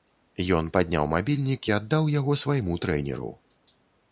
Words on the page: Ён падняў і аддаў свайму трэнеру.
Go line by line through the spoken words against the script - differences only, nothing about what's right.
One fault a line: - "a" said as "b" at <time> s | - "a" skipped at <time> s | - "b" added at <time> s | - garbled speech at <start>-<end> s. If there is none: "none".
- "мабільнік" added at 1.1 s
- "яго" added at 2.2 s